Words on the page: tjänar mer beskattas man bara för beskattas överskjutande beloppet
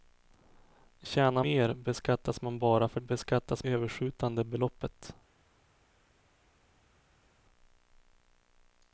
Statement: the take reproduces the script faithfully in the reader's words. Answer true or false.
true